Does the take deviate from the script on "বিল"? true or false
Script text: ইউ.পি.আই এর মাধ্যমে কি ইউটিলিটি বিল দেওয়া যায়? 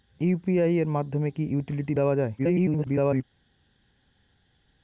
true